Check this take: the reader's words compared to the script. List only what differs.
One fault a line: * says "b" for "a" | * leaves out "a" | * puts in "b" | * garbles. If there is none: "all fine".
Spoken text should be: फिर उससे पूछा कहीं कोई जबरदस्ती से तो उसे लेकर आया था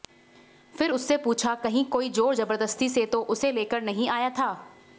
* puts in "जोर"
* puts in "नहीं"